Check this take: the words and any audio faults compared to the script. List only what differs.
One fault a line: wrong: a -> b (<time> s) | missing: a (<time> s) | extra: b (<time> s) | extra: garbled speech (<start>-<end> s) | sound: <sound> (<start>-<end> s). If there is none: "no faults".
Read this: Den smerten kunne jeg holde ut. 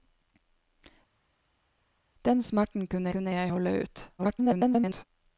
extra: kunne (3.1 s)
extra: garbled speech (4.2-5.0 s)